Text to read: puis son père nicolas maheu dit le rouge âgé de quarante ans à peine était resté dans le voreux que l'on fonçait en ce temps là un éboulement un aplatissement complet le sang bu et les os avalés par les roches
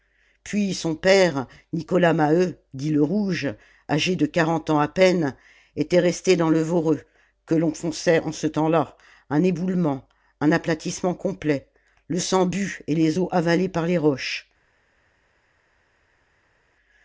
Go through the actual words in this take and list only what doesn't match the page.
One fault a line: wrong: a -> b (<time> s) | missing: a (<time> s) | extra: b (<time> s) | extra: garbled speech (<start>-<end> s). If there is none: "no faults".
no faults